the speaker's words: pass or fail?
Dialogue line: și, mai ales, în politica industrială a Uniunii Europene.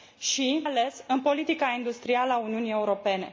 fail